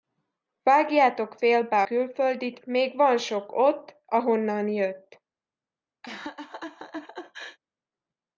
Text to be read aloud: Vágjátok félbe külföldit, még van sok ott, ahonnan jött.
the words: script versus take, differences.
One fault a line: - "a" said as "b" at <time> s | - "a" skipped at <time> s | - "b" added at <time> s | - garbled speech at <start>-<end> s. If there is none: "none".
none